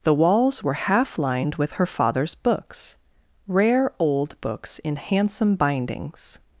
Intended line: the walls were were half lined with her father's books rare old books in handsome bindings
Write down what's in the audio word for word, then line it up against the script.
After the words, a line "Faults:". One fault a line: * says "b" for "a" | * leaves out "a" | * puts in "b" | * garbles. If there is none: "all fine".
the walls were half lined with her father's books rare old books in handsome bindings
Faults:
* leaves out "were"